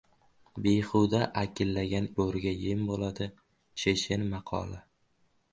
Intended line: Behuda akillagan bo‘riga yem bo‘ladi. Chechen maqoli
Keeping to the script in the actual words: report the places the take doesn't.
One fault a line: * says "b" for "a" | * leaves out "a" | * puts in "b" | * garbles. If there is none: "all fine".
all fine